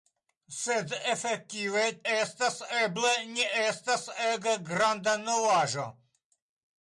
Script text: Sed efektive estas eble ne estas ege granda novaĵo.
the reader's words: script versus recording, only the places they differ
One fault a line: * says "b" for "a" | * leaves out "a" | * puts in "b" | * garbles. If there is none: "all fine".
all fine